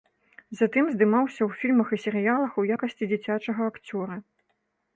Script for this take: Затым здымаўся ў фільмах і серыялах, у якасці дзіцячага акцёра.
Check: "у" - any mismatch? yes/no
no